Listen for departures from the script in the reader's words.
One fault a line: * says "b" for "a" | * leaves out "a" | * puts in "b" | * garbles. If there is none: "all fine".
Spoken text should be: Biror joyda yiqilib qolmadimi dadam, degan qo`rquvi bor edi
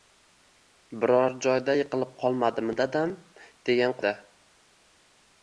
* leaves out "qo`rquvi bor"